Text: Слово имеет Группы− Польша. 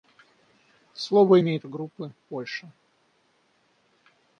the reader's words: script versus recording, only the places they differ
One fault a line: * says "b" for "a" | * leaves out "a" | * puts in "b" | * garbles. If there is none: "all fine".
all fine